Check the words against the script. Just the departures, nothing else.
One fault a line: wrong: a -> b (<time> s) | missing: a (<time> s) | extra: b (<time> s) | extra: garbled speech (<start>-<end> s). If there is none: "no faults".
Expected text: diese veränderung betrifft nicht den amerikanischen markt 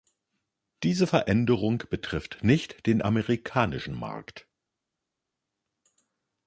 no faults